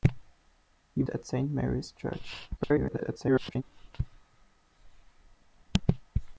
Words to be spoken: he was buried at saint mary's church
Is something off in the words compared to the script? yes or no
yes